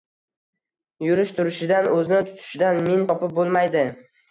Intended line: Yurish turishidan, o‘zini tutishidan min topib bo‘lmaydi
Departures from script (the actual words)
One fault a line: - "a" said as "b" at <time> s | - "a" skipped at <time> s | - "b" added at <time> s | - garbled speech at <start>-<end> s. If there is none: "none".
none